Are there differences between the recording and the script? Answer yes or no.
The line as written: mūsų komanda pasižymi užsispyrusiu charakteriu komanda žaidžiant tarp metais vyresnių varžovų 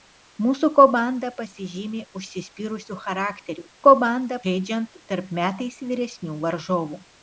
no